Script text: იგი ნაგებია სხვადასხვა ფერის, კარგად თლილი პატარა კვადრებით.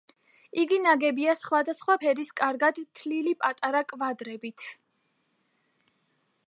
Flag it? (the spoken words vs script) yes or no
no